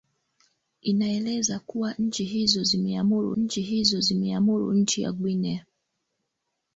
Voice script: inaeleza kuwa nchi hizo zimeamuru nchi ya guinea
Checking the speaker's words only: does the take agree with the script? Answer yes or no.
no